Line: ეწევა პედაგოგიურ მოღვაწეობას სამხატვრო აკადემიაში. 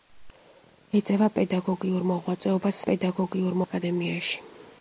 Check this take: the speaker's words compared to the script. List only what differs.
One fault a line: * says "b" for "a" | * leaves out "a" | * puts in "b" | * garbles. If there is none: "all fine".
* says "პედაგოგიურ" for "სამხატვრო"